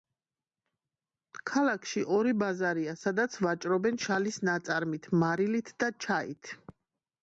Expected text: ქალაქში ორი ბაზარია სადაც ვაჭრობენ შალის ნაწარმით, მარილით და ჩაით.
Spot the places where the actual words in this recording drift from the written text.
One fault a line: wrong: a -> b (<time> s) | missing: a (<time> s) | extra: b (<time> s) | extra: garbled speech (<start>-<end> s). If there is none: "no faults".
no faults